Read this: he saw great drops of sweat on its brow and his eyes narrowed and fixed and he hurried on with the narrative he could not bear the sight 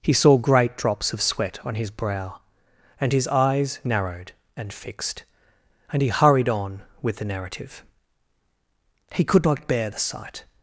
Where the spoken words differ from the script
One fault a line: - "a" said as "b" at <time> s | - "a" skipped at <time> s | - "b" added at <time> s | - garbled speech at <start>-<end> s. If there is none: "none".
- "its" said as "his" at 1.8 s